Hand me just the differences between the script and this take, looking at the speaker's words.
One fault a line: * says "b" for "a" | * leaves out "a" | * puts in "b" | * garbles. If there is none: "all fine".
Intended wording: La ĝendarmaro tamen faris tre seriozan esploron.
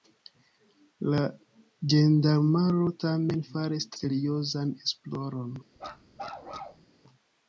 * leaves out "tre"